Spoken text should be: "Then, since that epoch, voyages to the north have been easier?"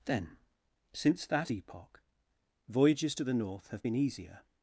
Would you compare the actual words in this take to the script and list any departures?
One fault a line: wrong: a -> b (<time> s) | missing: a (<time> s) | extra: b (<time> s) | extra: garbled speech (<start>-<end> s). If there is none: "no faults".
no faults